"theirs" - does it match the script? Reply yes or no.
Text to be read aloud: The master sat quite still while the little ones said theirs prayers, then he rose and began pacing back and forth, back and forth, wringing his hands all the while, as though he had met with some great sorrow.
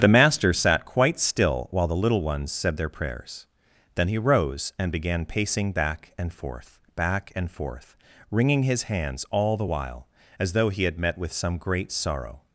no